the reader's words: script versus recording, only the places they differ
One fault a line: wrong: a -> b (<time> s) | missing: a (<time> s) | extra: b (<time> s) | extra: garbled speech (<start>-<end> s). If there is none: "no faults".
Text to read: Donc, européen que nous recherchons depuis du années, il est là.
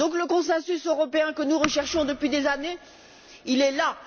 extra: le consensus (0.1 s)
wrong: du -> des (2.3 s)